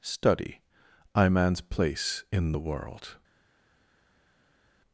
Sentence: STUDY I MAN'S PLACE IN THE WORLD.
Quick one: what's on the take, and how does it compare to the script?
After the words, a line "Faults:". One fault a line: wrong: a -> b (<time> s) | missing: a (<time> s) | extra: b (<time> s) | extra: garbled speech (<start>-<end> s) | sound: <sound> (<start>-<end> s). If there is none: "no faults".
STUDY I MAN'S PLACE IN THE WORLD.
Faults:
no faults